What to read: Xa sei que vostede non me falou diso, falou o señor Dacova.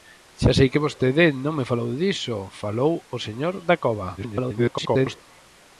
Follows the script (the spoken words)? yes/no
no